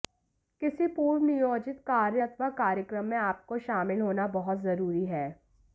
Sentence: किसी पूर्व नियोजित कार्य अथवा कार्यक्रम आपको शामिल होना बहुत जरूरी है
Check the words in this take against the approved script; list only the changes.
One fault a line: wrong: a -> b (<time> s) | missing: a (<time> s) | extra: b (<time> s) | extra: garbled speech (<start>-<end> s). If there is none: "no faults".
extra: में (3.0 s)